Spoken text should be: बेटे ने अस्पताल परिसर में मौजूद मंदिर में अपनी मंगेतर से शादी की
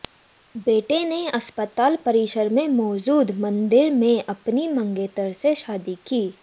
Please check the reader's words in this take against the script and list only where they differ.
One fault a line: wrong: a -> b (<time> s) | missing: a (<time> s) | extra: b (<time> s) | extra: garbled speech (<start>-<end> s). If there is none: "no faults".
no faults